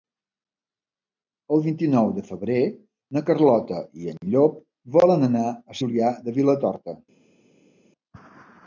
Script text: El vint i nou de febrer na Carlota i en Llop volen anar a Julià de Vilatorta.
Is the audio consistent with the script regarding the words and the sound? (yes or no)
yes